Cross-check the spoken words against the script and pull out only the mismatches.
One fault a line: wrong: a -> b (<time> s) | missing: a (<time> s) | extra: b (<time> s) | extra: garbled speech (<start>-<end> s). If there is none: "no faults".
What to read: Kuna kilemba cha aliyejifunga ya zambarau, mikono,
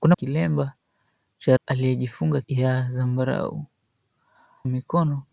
no faults